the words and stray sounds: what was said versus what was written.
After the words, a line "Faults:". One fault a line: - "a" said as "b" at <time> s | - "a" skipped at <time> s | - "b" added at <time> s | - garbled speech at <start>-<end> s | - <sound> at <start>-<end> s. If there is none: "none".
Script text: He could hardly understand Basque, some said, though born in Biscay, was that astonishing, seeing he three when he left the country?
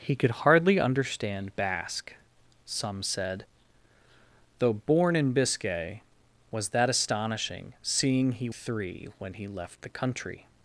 He could hardly understand Basque, some said, though born in Biscay, was that astonishing, seeing he three when he left the country?
Faults:
none